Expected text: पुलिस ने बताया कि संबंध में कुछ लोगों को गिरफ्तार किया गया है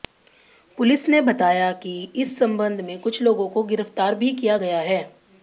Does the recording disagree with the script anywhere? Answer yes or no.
yes